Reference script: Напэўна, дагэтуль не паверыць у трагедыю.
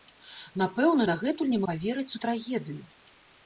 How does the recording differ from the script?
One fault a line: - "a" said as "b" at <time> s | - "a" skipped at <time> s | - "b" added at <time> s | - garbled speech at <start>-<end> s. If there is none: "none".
none